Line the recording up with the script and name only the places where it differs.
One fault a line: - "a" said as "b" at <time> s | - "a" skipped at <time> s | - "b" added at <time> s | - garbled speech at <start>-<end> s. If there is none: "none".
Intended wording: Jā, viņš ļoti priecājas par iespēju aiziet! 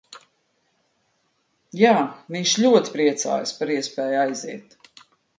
none